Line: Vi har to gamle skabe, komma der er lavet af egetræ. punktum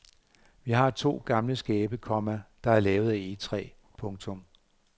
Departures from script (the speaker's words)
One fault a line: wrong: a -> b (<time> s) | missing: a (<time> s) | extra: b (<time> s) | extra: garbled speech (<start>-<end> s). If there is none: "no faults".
no faults